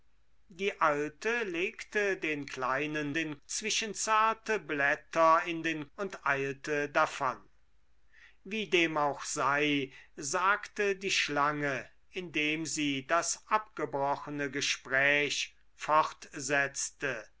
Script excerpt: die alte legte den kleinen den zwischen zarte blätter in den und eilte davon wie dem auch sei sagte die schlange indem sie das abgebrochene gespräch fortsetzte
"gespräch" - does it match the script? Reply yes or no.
yes